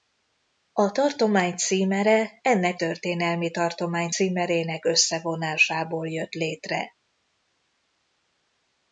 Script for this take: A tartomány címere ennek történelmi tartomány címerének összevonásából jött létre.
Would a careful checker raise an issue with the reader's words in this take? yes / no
no